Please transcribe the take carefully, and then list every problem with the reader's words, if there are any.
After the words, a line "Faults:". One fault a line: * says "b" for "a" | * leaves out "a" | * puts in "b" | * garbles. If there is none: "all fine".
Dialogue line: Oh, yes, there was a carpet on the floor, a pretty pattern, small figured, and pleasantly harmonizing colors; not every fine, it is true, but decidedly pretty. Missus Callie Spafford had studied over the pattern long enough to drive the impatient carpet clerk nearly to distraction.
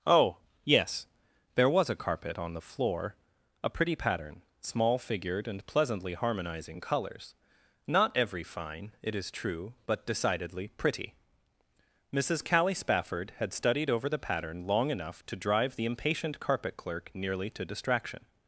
Oh, yes, there was a carpet on the floor, a pretty pattern, small figured, and pleasantly harmonizing colors; not every fine, it is true, but decidedly pretty. Missus Callie Spafford had studied over the pattern long enough to drive the impatient carpet clerk nearly to distraction.
Faults:
all fine